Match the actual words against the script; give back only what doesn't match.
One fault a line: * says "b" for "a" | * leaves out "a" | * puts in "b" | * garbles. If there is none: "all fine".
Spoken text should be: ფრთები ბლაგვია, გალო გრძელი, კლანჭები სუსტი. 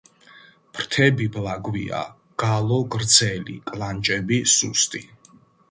all fine